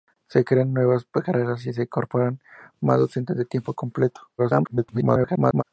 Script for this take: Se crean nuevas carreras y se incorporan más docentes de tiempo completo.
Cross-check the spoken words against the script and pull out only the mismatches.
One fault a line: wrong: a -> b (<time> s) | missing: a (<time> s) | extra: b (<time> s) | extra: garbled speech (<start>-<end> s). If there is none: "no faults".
extra: garbled speech (4.4-5.6 s)